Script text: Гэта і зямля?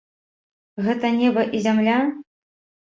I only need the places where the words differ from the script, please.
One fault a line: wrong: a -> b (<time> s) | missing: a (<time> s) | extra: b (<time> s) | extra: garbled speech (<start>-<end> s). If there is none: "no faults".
extra: неба (1.2 s)